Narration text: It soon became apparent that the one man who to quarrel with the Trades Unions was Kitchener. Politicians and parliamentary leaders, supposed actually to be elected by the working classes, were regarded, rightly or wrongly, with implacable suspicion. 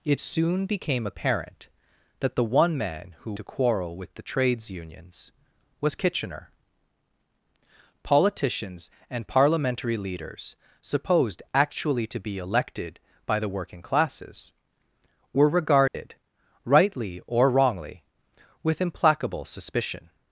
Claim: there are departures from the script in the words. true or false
false